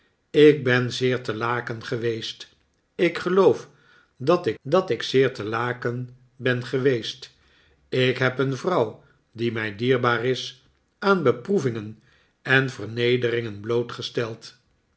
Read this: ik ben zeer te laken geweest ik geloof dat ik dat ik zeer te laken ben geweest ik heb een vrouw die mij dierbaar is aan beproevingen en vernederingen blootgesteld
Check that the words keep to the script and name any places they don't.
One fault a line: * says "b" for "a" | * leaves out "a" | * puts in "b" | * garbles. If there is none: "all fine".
all fine